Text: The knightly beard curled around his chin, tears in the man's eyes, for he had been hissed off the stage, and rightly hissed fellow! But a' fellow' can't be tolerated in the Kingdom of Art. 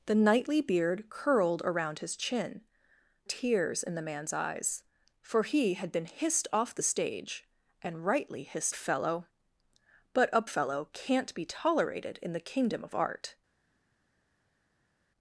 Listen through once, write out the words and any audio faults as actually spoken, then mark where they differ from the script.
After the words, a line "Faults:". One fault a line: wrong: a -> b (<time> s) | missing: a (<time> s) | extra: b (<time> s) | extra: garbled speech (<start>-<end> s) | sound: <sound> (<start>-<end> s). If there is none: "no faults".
The knightly beard curled around his chin, tears in the man's eyes, for he had been hissed off the stage, and rightly hissed fellow! But a' fellow' can't be tolerated in the Kingdom of Art.
Faults:
no faults